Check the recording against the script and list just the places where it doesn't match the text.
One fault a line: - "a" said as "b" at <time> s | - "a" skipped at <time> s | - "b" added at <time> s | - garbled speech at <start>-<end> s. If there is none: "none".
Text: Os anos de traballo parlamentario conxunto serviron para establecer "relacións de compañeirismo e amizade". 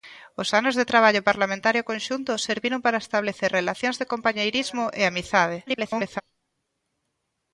- garbled speech at 5.7-6.2 s